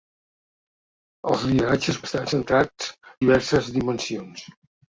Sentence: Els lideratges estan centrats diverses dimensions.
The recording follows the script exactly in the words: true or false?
true